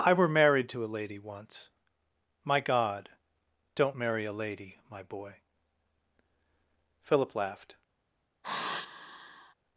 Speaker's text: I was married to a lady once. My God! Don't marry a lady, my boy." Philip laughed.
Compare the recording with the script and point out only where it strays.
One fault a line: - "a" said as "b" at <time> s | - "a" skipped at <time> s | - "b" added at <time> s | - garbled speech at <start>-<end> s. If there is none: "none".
- "was" said as "were" at 0.1 s